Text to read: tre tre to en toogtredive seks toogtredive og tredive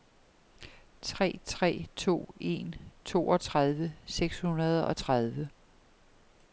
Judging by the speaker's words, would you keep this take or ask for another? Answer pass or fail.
fail